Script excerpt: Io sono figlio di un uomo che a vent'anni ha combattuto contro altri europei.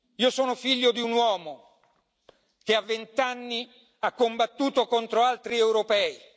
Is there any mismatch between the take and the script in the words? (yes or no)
no